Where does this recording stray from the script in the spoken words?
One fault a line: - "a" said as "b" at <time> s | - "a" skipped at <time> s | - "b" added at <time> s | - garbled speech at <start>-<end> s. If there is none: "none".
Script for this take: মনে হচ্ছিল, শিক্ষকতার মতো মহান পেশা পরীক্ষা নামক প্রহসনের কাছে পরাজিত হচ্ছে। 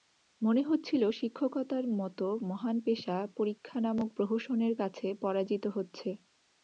none